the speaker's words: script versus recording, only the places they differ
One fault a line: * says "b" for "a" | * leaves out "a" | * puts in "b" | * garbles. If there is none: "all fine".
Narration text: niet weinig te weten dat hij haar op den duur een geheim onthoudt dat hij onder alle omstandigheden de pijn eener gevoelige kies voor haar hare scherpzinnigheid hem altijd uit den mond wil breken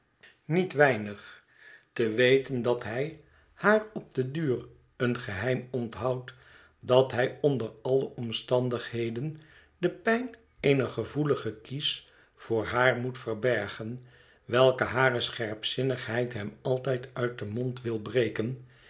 * puts in "moet verbergen welke"